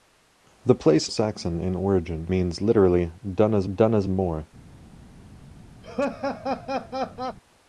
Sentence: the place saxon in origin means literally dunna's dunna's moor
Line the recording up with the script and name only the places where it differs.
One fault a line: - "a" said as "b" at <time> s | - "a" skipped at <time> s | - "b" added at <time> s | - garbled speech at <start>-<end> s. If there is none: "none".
none